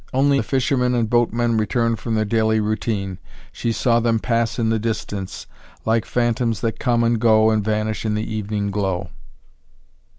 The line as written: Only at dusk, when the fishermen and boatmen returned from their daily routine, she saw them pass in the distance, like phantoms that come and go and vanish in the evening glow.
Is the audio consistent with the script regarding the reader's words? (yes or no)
no